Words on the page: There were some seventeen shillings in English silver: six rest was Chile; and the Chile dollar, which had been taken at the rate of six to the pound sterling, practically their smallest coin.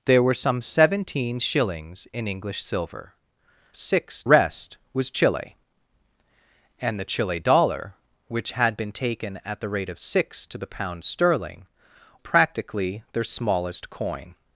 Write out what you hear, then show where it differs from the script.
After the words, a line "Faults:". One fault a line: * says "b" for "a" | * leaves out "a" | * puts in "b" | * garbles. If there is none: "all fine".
There were some seventeen shillings in English silver: six rest was Chile; and the Chile dollar, which had been taken at the rate of six to the pound sterling, practically their smallest coin.
Faults:
all fine